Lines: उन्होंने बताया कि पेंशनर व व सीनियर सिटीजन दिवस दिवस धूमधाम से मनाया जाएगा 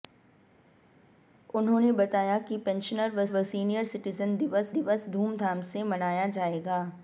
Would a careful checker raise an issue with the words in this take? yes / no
no